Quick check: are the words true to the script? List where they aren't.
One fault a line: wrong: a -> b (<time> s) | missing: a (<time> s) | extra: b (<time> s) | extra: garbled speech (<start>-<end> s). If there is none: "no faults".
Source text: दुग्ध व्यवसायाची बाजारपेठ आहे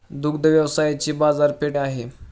no faults